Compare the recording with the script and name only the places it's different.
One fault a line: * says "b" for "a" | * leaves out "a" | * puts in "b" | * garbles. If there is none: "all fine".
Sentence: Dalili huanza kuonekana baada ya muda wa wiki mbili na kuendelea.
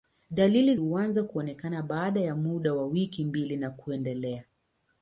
all fine